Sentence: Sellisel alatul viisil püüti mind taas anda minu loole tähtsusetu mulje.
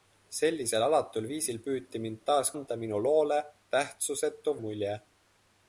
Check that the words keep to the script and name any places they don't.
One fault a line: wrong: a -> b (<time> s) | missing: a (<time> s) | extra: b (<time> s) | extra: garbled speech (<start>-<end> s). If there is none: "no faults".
no faults